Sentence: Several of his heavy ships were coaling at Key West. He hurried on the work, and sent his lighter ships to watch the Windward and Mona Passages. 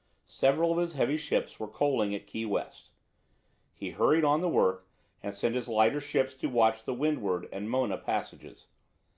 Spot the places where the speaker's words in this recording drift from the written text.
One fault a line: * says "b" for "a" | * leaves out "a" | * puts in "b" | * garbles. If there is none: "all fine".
all fine